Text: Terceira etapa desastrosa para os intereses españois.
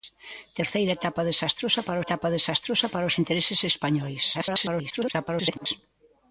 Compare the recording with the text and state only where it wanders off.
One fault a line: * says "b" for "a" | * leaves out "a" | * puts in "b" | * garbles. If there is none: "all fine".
* puts in "etapa desastrosa para"
* garbles